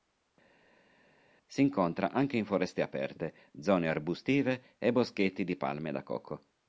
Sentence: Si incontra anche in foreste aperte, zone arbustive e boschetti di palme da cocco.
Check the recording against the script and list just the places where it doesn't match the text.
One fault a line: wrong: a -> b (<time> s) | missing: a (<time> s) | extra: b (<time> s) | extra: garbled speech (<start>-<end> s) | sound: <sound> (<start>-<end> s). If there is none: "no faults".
no faults